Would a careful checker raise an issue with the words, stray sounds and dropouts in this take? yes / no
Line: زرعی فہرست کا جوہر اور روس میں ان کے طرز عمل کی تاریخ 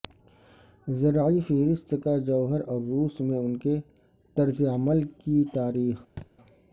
yes